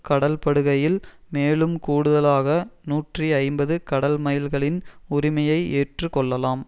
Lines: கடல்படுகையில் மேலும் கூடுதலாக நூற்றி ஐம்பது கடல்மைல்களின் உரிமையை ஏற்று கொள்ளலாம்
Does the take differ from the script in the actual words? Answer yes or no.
no